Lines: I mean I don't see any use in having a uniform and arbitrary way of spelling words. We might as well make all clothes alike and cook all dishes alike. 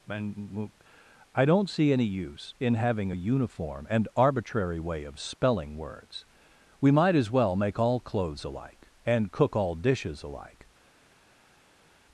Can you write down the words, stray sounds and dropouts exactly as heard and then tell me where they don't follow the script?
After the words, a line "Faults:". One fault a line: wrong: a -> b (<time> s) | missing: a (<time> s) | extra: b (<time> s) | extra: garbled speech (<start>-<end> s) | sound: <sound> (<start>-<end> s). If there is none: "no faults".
and I don't see any use in having a uniform and arbitrary way of spelling words. We might as well make all clothes alike and cook all dishes alike.
Faults:
wrong: I mean -> and (0.1 s)